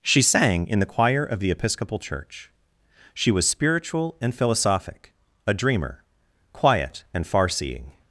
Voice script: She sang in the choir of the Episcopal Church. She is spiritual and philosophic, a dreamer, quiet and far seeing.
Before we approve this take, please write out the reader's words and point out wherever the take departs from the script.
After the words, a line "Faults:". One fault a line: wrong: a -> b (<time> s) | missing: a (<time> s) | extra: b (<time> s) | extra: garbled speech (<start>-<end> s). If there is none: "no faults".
She sang in the choir of the Episcopal Church. She was spiritual and philosophic, a dreamer, quiet and far seeing.
Faults:
wrong: is -> was (3.3 s)